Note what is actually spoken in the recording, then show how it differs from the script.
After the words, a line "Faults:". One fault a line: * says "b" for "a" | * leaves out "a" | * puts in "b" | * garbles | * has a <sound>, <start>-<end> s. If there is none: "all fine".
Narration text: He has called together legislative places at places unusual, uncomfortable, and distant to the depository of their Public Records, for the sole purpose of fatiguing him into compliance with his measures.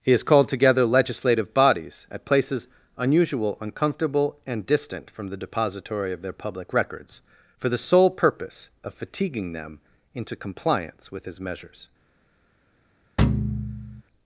He has called together legislative bodies at places unusual, uncomfortable, and distant from the depository of their Public Records, for the sole purpose of fatiguing them into compliance with his measures.
Faults:
* says "bodies" for "places"
* says "from" for "to"
* says "them" for "him"
* has a thud, 13.2-14.0 s